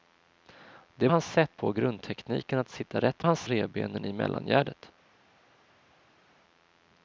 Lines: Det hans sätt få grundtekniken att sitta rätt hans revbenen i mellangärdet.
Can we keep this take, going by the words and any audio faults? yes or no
yes